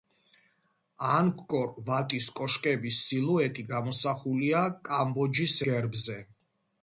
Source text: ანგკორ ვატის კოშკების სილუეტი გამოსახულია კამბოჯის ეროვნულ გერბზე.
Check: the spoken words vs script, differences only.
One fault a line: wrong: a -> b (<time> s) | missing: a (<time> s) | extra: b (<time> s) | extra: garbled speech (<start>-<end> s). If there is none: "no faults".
missing: ეროვნულ (5.6 s)